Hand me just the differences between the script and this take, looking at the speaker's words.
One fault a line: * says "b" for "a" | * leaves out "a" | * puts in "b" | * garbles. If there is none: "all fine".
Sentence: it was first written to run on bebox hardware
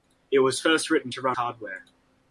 * leaves out "on bebox"